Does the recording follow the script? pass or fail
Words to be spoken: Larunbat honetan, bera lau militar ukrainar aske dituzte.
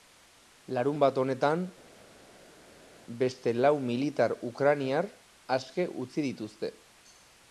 fail